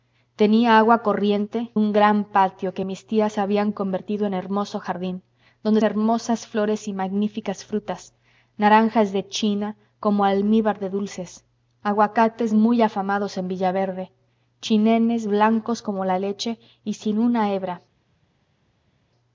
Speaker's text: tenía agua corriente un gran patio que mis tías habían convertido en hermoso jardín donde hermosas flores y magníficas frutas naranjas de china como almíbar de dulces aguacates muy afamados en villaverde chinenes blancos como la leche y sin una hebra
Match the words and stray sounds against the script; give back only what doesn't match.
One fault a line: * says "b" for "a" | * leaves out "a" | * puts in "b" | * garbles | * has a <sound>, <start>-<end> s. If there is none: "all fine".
all fine